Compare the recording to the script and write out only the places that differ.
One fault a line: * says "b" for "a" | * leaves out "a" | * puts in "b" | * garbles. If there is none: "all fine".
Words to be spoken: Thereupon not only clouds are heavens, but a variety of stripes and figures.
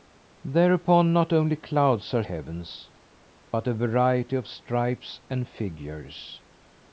all fine